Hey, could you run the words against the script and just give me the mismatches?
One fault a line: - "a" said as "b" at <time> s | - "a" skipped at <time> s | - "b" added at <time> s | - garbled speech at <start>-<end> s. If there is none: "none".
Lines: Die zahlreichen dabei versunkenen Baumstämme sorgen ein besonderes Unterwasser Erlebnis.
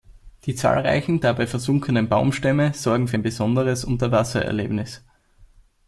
- "für" added at 3.1 s